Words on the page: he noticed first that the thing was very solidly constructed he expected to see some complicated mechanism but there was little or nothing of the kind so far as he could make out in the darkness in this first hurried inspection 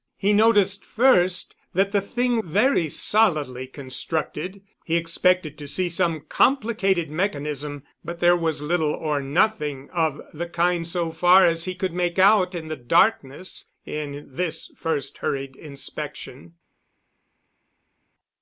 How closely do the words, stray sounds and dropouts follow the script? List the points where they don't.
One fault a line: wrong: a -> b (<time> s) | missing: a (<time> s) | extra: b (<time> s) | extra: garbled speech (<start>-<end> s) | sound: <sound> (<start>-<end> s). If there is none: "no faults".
missing: was (2.4 s)